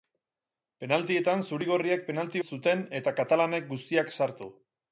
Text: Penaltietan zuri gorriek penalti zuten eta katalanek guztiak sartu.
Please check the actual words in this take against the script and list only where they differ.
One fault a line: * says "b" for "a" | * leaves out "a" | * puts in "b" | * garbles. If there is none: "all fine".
all fine